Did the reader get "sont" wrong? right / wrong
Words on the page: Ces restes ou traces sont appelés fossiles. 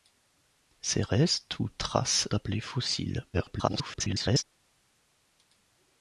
wrong